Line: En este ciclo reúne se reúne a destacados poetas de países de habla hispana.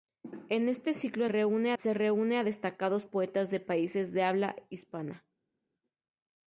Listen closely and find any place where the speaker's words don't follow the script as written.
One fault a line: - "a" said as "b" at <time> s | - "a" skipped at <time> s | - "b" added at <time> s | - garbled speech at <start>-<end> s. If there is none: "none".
none